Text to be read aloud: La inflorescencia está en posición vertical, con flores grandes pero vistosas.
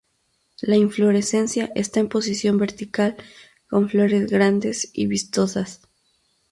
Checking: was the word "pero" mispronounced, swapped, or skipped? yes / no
yes